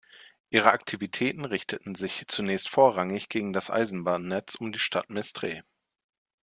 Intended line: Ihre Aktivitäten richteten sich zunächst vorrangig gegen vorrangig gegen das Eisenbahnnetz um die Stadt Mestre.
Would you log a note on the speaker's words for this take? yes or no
yes